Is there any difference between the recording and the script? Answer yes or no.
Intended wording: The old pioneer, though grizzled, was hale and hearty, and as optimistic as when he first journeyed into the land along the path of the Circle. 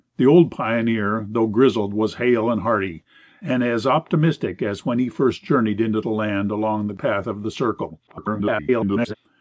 yes